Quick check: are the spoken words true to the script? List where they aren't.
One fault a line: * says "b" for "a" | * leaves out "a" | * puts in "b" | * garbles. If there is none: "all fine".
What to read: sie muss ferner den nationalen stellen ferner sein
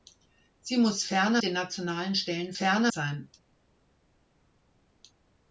all fine